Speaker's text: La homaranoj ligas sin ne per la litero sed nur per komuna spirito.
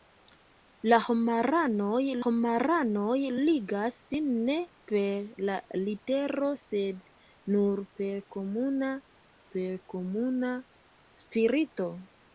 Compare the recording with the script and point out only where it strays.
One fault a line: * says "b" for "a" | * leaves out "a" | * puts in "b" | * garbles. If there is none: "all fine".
* puts in "homaranoj"
* puts in "per komuna"